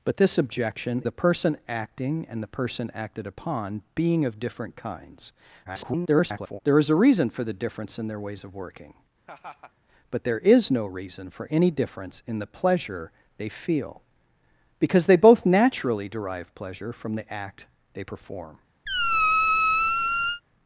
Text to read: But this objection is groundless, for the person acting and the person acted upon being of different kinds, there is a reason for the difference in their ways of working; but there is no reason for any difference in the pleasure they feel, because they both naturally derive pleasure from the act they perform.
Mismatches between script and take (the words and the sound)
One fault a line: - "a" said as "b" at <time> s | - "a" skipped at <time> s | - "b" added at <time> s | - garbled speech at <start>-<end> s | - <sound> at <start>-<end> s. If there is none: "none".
- "is groundless for" skipped at 1.0 s
- garbled speech at 5.6-6.6 s
- laugh at 9.3-9.7 s
- squeak at 18.9-20.4 s